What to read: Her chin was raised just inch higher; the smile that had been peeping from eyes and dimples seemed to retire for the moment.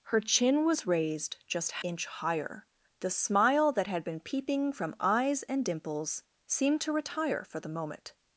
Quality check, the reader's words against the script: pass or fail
pass